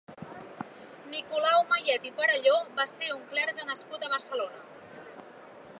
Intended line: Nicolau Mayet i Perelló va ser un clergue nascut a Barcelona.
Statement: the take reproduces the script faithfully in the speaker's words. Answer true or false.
true